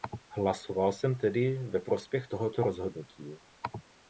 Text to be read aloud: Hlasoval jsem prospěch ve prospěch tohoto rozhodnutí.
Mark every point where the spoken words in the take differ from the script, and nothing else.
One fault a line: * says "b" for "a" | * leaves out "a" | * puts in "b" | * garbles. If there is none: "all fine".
* says "tedy" for "prospěch"